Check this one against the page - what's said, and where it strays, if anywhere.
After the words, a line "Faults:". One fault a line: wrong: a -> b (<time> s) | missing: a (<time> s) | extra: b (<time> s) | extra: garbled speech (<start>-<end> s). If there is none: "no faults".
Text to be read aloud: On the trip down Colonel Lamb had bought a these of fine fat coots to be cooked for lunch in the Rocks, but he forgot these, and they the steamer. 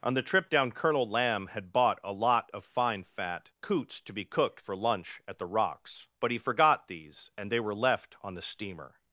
On the trip down Colonel Lamb had bought a lot of fine fat coots to be cooked for lunch at the Rocks, but he forgot these, and they were left on the steamer.
Faults:
wrong: these -> lot (2.1 s)
wrong: in -> at (5.3 s)
extra: were left on (7.6 s)